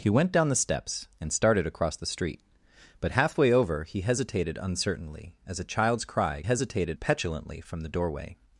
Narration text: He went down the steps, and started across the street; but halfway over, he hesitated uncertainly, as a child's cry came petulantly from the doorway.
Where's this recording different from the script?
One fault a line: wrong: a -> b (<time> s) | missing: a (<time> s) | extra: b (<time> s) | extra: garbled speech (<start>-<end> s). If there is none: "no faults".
wrong: came -> hesitated (6.4 s)